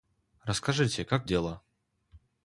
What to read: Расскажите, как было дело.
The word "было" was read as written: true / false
false